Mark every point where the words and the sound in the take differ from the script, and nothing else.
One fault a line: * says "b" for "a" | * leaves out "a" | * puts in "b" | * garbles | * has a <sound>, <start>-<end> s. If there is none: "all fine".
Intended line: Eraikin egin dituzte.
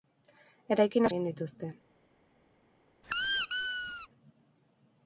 * has a squeak, 3.0-4.1 s